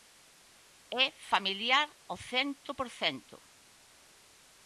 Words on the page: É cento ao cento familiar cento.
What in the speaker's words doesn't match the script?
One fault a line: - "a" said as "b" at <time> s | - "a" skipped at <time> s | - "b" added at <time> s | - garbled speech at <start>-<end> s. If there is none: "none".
- "cento" said as "familiar" at 1.3 s
- "familiar" said as "por" at 2.8 s